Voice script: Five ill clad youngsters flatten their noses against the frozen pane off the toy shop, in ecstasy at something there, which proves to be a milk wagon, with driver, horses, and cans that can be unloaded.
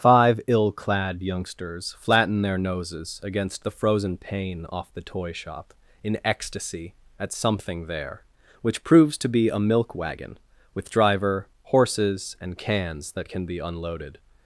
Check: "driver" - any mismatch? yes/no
no